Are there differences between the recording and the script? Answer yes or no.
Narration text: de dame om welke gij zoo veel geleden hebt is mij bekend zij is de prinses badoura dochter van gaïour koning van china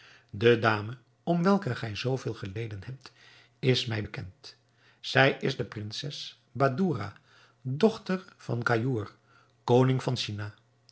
no